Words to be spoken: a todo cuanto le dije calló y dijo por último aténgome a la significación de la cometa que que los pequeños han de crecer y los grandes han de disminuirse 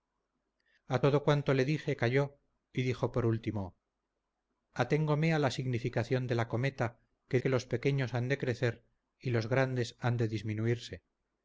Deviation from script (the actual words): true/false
false